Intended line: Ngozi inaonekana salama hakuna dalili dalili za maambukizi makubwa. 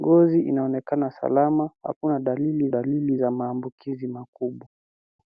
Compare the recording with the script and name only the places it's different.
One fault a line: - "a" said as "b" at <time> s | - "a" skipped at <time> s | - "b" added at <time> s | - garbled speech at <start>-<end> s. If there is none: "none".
none